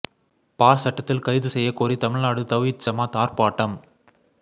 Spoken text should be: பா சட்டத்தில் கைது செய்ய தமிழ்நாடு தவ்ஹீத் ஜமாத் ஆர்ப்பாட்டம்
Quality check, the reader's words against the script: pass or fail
fail